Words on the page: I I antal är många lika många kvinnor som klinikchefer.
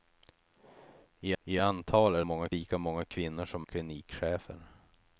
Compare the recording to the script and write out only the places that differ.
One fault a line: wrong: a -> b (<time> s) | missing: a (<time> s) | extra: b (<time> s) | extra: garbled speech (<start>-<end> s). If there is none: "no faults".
no faults